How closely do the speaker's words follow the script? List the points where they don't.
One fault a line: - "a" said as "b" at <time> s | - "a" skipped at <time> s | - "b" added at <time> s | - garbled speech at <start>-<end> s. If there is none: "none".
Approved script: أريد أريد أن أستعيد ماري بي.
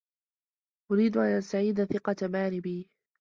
- "أريد" skipped at 1.2 s
- "ثقة" added at 1.8 s